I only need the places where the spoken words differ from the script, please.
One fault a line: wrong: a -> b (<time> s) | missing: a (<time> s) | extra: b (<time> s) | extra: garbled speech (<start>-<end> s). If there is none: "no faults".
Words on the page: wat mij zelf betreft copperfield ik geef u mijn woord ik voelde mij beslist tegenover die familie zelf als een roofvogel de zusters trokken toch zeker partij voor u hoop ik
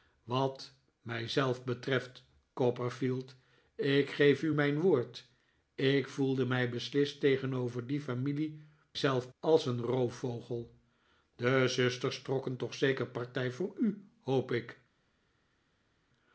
no faults